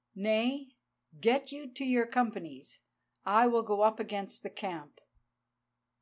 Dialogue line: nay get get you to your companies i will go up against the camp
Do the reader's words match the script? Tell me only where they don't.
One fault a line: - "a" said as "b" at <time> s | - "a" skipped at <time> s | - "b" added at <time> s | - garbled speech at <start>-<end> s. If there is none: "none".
- "get" skipped at 1.5 s